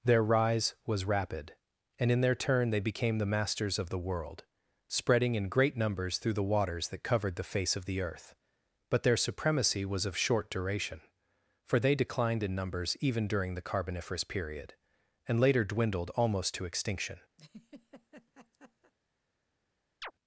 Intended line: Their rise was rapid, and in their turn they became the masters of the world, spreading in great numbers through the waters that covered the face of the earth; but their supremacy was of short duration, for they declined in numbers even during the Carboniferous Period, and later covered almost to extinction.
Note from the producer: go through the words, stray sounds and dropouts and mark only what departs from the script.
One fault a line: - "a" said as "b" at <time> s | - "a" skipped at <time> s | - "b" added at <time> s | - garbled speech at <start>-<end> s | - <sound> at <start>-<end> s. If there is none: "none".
- "covered" said as "dwindled" at 15.6 s
- laugh at 17.4-18.9 s
- chirp at 20.0-20.1 s